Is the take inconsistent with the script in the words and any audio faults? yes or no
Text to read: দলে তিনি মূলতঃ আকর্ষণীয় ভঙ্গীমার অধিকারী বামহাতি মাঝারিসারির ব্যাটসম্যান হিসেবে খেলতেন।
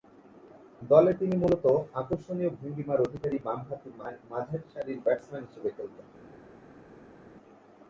no